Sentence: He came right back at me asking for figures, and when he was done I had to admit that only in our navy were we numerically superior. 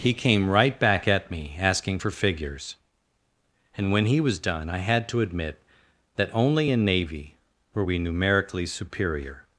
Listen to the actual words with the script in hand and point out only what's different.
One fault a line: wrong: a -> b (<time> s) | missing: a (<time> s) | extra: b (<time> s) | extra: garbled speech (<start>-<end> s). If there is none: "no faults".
missing: our (6.8 s)